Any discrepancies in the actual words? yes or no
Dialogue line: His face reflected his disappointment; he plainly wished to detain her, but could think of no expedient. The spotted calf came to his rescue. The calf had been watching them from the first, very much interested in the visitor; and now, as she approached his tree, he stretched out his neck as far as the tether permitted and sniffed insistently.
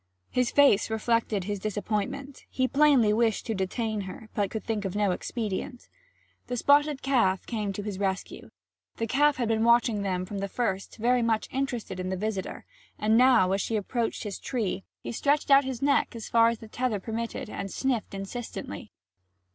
no